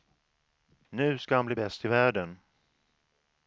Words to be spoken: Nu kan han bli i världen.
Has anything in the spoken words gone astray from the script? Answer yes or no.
yes